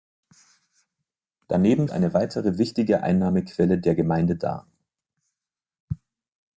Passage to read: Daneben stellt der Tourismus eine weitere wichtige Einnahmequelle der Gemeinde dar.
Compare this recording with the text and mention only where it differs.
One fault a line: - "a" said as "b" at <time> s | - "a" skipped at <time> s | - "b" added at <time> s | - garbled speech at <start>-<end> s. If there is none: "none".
- "stellt der Tourismus" skipped at 1.9 s